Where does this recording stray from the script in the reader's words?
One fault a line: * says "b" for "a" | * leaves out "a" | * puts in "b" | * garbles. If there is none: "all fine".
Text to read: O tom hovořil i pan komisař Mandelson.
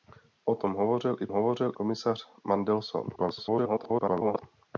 * says "hovořil" for "pan"
* garbles